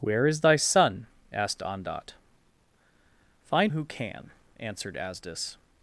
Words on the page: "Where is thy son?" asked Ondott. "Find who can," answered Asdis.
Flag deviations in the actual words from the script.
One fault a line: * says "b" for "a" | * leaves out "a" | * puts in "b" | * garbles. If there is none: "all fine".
all fine